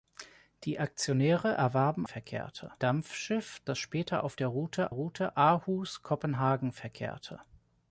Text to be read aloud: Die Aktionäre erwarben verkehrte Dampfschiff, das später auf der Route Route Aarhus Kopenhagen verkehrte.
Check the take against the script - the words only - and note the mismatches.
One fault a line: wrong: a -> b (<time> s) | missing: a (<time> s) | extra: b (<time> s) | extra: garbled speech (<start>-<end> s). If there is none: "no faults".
no faults